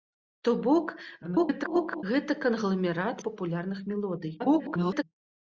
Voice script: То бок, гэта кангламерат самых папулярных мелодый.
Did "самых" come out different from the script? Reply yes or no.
yes